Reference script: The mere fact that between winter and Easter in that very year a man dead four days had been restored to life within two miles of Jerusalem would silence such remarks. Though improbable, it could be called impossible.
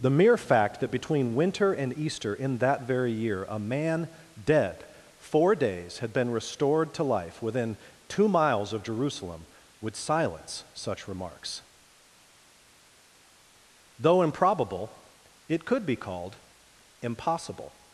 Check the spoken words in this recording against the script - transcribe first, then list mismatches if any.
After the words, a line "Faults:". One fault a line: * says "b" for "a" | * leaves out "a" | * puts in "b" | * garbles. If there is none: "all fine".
The mere fact that between winter and Easter in that very year a man dead four days had been restored to life within two miles of Jerusalem would silence such remarks. Though improbable, it could be called impossible.
Faults:
all fine